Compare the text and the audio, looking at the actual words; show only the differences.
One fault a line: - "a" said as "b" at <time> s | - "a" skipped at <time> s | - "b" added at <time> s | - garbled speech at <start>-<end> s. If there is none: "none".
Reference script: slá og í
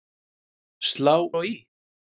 none